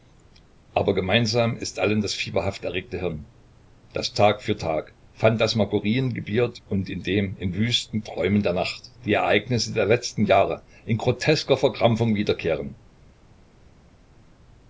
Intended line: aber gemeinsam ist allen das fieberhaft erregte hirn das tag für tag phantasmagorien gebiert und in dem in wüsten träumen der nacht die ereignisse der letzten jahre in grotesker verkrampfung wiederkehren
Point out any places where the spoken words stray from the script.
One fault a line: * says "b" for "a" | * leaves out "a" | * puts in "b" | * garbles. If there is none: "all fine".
all fine